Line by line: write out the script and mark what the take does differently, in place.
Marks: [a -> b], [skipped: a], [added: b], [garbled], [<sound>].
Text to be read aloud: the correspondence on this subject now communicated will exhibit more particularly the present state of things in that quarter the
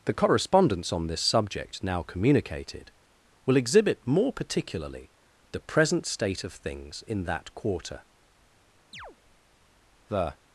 the correspondence on this subject now communicated will exhibit more particularly the present state of things in that quarter [chirp] the